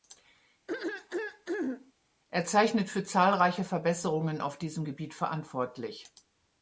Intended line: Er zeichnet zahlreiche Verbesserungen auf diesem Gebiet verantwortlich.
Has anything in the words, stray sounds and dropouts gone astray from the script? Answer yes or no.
yes